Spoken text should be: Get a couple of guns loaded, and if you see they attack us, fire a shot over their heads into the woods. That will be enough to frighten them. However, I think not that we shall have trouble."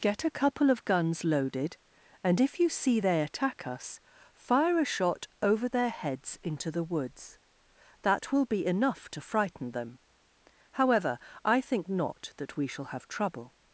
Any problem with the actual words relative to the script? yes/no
no